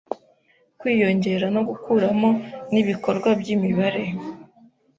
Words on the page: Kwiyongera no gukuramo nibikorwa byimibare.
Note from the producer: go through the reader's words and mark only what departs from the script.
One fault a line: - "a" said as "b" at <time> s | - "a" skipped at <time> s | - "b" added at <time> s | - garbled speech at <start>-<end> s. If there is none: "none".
none